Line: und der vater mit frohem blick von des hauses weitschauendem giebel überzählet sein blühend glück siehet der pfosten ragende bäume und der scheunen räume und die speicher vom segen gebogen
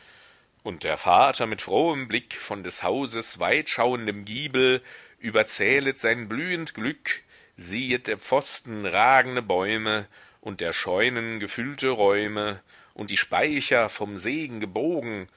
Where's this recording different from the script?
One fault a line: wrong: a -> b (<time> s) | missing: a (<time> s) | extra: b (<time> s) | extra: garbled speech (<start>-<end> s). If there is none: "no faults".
extra: gefüllte (11.4 s)